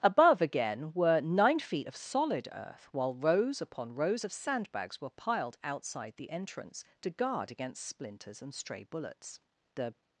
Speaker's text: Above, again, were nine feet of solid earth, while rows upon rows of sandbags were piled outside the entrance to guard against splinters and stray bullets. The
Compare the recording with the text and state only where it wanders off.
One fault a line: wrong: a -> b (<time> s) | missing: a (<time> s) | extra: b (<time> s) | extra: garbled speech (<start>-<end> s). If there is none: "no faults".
no faults